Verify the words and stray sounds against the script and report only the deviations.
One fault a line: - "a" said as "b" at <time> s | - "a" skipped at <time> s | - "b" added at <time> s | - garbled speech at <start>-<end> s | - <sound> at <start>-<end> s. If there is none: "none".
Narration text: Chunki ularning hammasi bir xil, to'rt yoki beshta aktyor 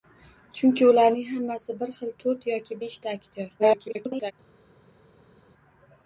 - garbled speech at 3.6-4.3 s